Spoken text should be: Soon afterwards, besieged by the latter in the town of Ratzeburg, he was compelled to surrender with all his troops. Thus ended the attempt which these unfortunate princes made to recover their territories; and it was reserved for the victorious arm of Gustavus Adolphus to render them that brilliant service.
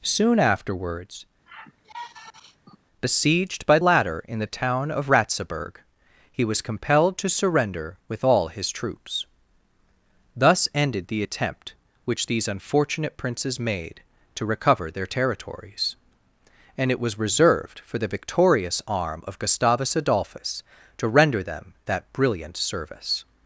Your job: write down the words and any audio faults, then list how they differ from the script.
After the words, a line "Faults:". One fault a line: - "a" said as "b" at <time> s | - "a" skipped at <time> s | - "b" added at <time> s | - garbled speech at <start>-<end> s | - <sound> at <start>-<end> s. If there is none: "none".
Soon afterwards, besieged by latter in the town of Ratzeburg, he was compelled to surrender with all his troops. Thus ended the attempt which these unfortunate princes made to recover their territories; and it was reserved for the victorious arm of Gustavus Adolphus to render them that brilliant service.
Faults:
- sigh at 1.5-2.8 s
- "the" skipped at 3.8 s